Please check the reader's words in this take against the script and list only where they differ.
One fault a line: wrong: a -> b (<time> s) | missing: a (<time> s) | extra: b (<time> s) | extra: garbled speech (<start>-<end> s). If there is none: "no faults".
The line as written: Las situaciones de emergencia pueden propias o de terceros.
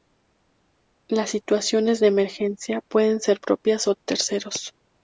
extra: ser (3.2 s)